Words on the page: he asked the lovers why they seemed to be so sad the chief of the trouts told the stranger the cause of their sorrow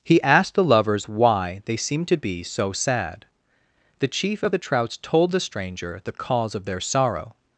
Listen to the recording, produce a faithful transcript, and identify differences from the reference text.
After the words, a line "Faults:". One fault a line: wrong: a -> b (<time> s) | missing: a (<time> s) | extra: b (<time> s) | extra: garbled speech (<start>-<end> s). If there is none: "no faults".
he asked the lovers why they seemed to be so sad the chief of the trouts told the stranger the cause of their sorrow
Faults:
no faults